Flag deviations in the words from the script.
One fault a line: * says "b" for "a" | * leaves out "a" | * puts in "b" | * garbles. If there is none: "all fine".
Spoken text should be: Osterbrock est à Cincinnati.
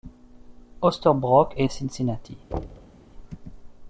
all fine